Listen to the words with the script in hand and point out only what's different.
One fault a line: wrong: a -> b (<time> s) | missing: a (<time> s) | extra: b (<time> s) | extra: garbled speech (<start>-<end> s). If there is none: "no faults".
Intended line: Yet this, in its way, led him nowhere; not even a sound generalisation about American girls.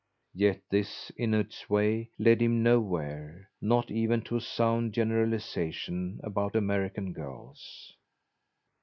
extra: to (4.2 s)